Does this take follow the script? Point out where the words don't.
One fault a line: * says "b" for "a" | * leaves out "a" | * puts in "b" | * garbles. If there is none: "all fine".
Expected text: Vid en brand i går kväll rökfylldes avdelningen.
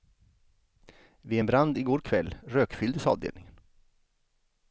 all fine